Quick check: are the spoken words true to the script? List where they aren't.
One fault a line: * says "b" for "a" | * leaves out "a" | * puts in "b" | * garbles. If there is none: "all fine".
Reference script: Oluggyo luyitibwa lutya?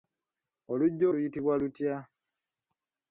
all fine